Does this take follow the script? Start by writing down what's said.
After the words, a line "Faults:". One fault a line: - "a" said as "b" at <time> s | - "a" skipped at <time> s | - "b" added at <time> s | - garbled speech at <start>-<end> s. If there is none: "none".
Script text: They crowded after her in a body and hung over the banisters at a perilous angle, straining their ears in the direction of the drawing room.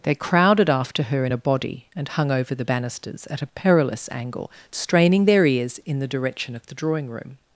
They crowded after her in a body and hung over the banisters at a perilous angle, straining their ears in the direction of the drawing room.
Faults:
none